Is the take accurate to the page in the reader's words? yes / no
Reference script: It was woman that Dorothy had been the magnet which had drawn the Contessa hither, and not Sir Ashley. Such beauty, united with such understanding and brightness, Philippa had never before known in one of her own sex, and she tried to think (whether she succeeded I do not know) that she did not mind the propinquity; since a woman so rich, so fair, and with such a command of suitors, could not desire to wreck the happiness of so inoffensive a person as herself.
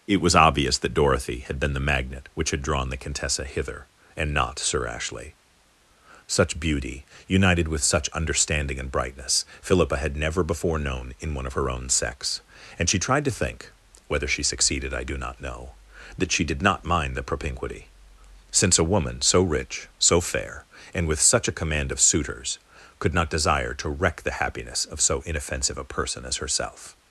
no